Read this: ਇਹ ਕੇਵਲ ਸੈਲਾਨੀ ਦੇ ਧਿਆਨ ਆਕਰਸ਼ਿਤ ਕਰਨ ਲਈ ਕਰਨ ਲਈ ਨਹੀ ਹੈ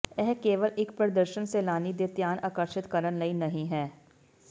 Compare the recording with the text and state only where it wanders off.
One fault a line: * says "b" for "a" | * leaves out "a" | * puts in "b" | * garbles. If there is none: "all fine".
* puts in "ਇੱਕ ਪ੍ਰਦਰਸ਼ਨ"
* leaves out "ਕਰਨ ਲਈ"